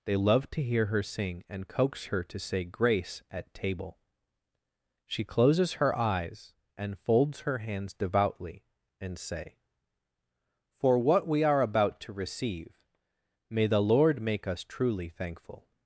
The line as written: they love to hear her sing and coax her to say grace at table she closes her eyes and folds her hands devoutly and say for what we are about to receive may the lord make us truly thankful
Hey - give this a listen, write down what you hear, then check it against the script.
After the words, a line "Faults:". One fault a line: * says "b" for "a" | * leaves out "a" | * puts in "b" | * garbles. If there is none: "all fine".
they love to hear her sing and coax her to say grace at table she closes her eyes and folds her hands devoutly and say for what we are about to receive may the lord make us truly thankful
Faults:
all fine